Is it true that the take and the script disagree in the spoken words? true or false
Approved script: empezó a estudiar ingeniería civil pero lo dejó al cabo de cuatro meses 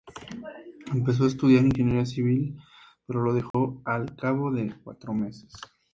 false